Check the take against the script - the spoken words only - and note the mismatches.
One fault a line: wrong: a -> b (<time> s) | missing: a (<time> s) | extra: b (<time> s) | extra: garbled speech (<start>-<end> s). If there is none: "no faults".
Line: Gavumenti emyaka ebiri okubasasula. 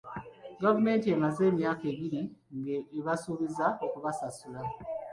extra: emaze (1.1 s)
extra: ng'ebasuubiza (2.6 s)